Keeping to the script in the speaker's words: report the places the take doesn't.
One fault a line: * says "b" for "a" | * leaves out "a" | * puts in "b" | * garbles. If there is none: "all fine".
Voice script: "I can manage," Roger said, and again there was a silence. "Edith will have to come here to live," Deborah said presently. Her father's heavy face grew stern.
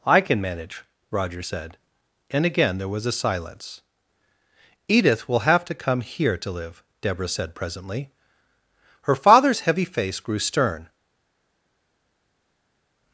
all fine